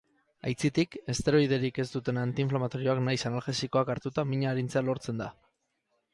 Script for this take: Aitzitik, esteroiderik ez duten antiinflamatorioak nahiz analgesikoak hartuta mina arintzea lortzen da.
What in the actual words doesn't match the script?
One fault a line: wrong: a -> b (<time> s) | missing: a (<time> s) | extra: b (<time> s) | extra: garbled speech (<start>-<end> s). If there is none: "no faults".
no faults